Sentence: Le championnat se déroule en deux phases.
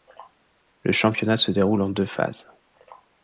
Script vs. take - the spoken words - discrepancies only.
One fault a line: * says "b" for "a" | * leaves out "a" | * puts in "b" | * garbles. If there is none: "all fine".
all fine